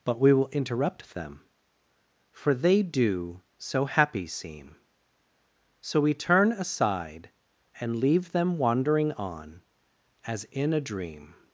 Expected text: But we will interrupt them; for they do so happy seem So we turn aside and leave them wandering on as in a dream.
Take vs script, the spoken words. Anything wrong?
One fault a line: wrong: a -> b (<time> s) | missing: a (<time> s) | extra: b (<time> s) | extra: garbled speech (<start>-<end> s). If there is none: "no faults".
no faults